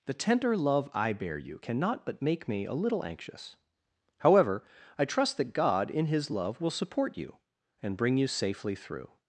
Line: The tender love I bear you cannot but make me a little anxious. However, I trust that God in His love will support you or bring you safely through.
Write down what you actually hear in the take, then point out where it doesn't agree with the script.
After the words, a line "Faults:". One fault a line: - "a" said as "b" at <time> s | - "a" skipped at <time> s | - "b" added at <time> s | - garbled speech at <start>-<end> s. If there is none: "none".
The tender love I bear you cannot but make me a little anxious. However, I trust that God in His love will support you and bring you safely through.
Faults:
- "or" said as "and" at 7.8 s